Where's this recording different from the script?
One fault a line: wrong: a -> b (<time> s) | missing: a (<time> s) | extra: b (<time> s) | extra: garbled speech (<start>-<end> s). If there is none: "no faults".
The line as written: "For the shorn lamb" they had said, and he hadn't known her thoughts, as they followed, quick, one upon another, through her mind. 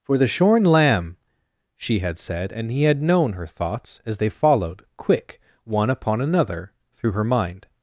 wrong: they -> she (1.8 s)
wrong: hadn't -> had (2.8 s)